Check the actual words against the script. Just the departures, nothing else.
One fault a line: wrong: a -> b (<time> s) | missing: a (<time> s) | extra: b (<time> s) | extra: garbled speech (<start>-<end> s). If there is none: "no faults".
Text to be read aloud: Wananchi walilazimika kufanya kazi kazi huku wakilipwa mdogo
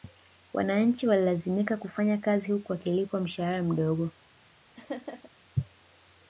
missing: kazi (2.5 s)
extra: mshahara (3.2 s)